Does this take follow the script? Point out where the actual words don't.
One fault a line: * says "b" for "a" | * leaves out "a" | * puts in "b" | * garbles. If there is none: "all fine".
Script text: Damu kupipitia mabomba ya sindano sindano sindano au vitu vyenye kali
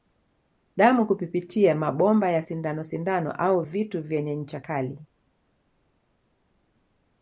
* leaves out "sindano"
* puts in "ncha"